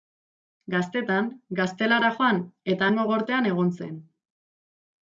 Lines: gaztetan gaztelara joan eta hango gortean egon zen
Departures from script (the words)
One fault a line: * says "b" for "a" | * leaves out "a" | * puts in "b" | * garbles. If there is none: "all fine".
all fine